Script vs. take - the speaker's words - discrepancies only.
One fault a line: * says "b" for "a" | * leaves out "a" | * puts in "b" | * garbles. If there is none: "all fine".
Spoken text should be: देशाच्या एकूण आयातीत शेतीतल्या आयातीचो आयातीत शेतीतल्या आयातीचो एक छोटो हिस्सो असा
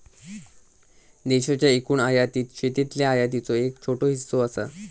* leaves out "आयातीत शेतीतल्या आयातीचो"